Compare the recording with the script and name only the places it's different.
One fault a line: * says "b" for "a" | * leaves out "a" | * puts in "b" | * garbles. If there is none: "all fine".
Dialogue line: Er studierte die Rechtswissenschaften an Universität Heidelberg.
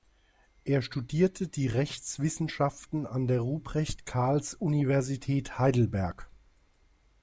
* puts in "der Ruprecht Karls"